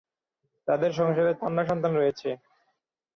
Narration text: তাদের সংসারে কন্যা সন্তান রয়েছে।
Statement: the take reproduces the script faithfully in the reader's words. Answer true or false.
true